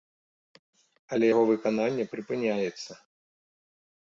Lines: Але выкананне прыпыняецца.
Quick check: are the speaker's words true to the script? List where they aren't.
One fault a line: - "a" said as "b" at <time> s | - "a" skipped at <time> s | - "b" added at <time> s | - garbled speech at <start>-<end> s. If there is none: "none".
- "яго" added at 1.3 s